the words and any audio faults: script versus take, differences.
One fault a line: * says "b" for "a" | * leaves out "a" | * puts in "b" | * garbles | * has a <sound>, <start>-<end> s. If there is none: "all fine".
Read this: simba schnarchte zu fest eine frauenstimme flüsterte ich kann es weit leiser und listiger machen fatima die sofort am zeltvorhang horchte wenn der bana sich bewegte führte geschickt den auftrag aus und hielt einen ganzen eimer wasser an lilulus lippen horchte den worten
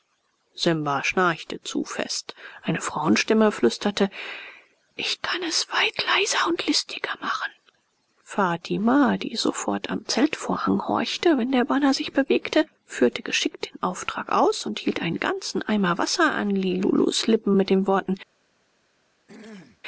* says "mit" for "horchte"
* has a throat clearing, 19.3-19.8 s